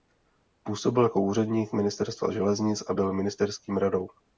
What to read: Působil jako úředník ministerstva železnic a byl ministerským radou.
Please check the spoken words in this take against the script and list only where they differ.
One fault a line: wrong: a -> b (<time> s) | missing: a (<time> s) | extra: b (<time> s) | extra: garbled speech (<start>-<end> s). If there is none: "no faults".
no faults